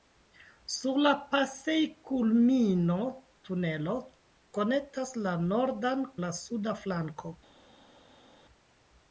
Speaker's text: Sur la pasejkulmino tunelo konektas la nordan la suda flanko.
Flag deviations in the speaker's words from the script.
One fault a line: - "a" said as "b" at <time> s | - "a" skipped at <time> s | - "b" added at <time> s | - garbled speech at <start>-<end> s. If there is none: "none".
none